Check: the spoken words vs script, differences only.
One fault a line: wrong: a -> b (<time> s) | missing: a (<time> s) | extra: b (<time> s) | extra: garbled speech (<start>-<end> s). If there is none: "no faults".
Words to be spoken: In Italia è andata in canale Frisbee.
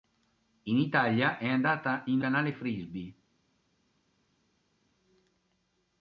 no faults